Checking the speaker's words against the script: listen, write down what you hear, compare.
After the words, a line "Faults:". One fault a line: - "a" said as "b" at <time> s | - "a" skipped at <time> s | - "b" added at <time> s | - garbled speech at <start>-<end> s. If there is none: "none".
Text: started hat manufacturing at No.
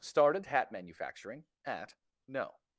started hat manufacturing at No.
Faults:
none